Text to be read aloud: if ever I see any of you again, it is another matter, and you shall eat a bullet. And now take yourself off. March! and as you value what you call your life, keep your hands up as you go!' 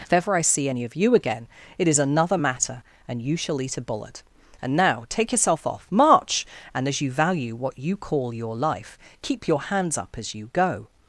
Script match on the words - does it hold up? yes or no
yes